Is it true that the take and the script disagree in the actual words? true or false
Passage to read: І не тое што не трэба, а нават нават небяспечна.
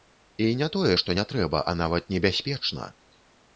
true